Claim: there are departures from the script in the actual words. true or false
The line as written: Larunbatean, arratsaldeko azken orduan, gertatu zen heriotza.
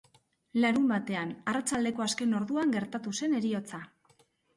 false